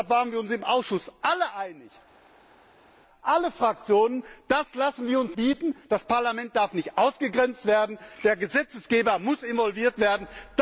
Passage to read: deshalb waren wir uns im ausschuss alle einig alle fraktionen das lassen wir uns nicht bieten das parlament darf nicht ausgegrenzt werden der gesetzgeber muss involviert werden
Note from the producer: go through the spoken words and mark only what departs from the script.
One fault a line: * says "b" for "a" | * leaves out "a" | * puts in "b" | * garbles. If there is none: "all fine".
* leaves out "nicht"